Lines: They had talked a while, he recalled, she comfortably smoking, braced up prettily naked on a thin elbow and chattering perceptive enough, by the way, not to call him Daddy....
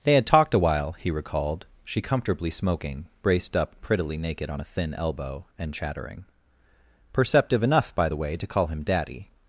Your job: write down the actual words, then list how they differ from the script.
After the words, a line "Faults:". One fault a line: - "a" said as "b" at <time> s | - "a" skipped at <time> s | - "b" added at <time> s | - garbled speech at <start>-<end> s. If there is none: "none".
They had talked a while, he recalled, she comfortably smoking, braced up prettily naked on a thin elbow and chattering perceptive enough, by the way, to call him Daddy....
Faults:
- "not" skipped at 8.3 s